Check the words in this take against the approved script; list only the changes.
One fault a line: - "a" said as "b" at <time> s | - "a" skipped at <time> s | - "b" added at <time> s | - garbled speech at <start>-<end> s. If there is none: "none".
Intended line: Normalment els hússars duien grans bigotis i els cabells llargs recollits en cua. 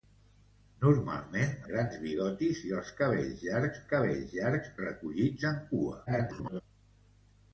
- "els hússars duien" skipped at 1.5 s
- "cabells llargs" added at 3.9 s
- garbled speech at 6.1-6.6 s